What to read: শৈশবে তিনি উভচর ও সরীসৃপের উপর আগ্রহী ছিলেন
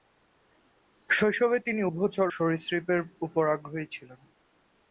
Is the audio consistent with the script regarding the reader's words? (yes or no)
no